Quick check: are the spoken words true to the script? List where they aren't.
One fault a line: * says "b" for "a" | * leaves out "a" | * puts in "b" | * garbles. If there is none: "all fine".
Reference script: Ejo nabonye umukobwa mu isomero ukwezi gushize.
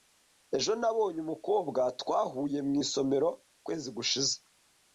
* puts in "twahuye"